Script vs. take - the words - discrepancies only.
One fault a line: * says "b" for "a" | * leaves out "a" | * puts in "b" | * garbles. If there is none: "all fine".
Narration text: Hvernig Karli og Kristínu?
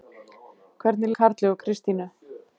all fine